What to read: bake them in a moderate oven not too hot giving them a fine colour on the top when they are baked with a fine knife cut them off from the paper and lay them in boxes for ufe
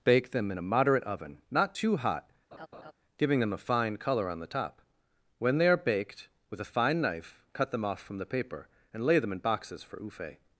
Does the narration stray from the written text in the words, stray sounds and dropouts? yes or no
yes